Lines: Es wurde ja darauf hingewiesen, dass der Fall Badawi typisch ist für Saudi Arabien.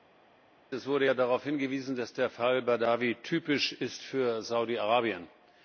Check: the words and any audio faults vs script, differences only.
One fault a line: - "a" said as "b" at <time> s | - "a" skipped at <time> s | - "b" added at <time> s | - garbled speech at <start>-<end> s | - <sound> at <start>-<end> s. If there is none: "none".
none